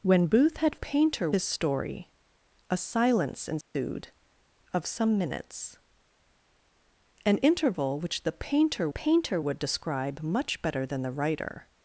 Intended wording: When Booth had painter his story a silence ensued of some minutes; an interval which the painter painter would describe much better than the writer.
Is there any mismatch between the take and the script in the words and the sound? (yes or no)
yes